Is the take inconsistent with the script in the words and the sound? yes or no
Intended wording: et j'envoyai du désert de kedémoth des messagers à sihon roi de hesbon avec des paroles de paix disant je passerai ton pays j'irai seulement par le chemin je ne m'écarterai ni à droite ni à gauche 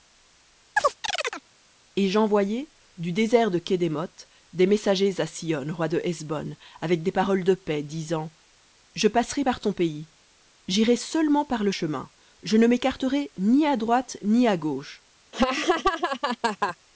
yes